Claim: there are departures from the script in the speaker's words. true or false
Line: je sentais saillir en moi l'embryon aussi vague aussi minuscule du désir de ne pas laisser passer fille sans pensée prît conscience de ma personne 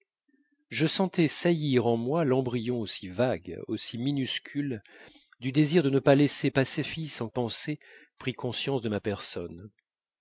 false